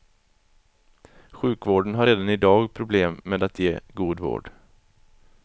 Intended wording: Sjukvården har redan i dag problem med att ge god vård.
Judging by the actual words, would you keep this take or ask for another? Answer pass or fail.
pass